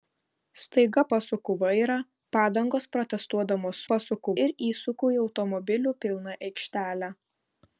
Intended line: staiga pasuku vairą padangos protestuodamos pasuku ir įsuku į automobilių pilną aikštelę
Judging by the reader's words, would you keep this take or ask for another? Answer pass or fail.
pass